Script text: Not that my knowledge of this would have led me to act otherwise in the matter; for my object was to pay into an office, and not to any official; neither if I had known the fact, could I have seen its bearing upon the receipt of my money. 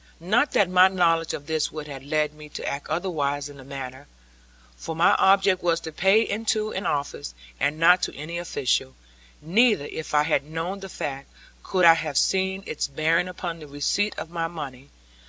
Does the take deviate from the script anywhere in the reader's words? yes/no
no